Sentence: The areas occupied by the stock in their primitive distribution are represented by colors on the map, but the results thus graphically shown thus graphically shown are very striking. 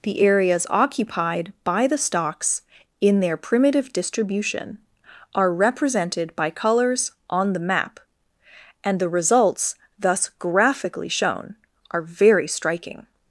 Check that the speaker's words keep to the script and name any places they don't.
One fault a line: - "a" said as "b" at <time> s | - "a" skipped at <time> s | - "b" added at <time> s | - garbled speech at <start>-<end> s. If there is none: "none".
- "stock" said as "stocks" at 2.0 s
- "but" said as "and" at 8.8 s
- "thus graphically shown" skipped at 11.6 s